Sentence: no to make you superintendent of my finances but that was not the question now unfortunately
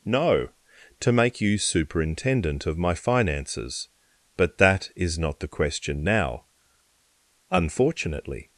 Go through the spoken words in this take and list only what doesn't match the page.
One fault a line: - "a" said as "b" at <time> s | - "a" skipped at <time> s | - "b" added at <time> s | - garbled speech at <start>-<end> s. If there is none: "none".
- "was" said as "is" at 5.0 s